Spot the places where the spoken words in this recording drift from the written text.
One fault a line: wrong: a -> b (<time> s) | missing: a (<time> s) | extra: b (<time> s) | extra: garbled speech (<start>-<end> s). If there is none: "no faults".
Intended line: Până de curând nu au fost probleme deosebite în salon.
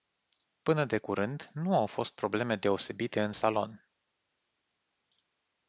no faults